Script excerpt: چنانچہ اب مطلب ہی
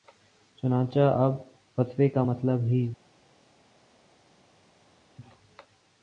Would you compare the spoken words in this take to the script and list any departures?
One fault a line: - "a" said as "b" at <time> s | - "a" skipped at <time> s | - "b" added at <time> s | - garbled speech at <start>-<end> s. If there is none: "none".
- "فتوے کا" added at 1.8 s